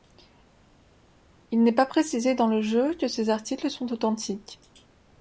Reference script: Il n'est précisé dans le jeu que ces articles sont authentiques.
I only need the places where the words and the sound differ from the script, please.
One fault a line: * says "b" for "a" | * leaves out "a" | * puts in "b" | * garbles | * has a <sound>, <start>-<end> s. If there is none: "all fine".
* puts in "pas"